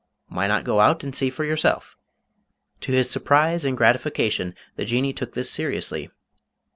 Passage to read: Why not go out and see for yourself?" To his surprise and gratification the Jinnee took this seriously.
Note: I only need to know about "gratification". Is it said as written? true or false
true